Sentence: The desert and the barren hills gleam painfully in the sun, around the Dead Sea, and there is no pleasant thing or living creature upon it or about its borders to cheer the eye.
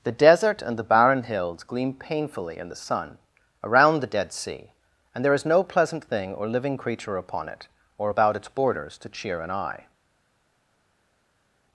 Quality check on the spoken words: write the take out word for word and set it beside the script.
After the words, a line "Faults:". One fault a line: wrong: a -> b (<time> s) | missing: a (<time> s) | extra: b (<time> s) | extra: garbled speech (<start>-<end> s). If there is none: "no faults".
The desert and the barren hills gleam painfully in the sun, around the Dead Sea, and there is no pleasant thing or living creature upon it or about its borders to cheer an eye.
Faults:
wrong: the -> an (9.4 s)